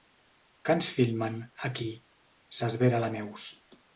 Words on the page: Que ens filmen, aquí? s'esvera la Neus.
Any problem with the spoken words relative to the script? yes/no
no